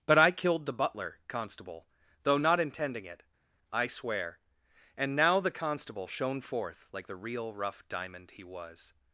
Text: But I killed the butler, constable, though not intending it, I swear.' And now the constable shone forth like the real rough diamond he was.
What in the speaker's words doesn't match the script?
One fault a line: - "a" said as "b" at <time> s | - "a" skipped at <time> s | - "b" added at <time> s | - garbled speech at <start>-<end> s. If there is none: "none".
none